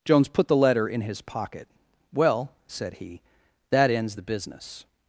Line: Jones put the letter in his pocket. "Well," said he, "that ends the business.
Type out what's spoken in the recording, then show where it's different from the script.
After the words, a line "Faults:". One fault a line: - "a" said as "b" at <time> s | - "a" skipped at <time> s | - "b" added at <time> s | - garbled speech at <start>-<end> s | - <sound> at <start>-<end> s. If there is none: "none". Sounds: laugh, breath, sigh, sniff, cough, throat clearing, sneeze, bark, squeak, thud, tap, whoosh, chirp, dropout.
Jones put the letter in his pocket. "Well," said he, "that ends the business.
Faults:
none